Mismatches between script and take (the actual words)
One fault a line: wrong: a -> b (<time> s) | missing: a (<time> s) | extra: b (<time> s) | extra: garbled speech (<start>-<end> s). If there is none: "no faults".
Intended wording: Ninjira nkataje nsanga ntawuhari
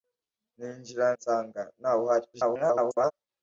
missing: nkataje (1.1 s)
extra: garbled speech (2.3-3.1 s)